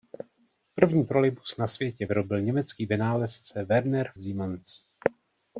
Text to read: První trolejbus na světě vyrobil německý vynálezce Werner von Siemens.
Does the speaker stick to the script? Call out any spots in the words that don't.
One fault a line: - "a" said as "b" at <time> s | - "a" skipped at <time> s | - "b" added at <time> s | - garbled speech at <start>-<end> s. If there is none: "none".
- "von" skipped at 4.1 s